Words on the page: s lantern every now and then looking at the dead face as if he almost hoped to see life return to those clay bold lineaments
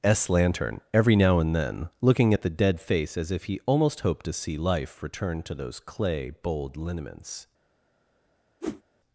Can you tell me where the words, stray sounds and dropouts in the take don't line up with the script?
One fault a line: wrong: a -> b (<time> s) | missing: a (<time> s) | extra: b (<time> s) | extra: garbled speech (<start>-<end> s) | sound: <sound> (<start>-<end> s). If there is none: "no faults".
sound: whoosh (8.6-8.8 s)